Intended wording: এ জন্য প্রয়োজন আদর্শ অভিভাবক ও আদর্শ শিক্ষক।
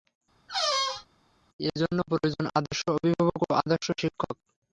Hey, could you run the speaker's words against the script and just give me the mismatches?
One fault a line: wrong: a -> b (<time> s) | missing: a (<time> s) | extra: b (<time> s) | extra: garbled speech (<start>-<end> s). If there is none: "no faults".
no faults